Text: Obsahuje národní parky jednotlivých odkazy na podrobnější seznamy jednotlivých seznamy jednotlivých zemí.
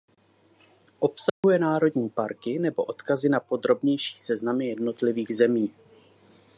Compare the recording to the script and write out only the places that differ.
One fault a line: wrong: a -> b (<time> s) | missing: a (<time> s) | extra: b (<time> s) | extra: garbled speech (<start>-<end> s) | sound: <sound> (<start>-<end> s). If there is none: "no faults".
sound: dropout (1.3-1.4 s)
wrong: jednotlivých -> nebo (2.6 s)
missing: seznamy jednotlivých (5.3 s)